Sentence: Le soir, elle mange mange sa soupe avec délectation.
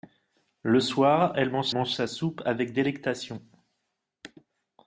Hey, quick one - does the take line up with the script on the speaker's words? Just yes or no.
yes